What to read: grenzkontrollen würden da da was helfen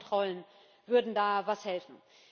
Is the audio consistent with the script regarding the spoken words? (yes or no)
no